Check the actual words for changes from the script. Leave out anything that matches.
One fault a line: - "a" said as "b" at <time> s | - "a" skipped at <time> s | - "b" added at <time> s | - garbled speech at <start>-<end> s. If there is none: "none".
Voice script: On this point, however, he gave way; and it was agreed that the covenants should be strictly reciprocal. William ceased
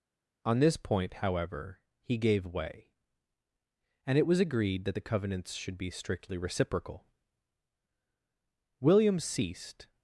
none